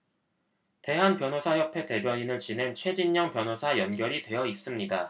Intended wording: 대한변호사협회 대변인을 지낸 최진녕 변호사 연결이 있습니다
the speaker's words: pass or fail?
fail